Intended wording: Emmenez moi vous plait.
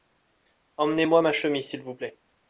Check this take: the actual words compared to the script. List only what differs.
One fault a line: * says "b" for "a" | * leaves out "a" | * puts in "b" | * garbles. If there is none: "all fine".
* puts in "ma chemise s'il"